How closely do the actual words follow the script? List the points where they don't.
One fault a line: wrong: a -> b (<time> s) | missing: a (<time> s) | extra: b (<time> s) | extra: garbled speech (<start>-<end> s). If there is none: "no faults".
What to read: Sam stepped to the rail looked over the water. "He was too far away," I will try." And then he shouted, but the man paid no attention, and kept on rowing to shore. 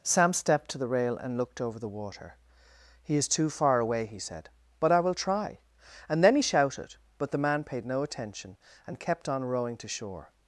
extra: and (1.2 s)
wrong: was -> is (3.1 s)
extra: he said but (4.0 s)